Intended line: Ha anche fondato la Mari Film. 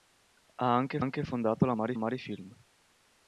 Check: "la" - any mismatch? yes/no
no